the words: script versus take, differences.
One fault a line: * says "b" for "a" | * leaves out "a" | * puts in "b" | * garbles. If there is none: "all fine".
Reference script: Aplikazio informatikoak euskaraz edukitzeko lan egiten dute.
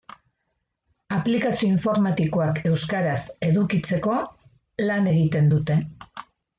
all fine